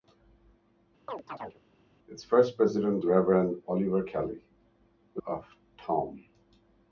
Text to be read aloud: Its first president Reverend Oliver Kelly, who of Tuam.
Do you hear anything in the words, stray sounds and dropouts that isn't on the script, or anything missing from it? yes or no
yes